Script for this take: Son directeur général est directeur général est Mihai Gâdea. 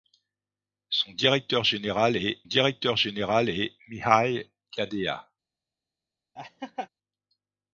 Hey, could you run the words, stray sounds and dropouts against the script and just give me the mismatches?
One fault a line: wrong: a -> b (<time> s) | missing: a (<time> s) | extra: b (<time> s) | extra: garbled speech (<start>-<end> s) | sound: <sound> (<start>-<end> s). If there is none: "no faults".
sound: laugh (6.4-6.9 s)